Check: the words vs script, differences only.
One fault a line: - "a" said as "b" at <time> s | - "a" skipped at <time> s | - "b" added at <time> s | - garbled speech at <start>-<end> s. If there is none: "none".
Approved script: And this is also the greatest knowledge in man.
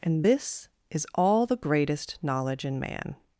- "also" said as "all" at 1.1 s